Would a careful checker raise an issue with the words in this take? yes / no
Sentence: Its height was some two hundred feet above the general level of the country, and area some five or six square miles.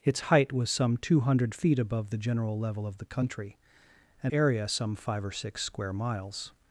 no